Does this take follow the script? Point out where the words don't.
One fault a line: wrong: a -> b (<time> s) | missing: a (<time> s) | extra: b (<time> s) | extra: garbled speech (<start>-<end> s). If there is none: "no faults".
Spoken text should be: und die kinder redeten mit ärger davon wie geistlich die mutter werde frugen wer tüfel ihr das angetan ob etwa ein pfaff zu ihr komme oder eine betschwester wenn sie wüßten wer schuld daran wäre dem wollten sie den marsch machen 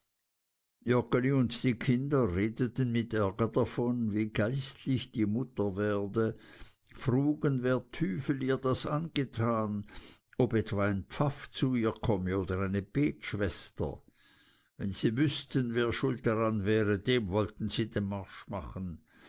no faults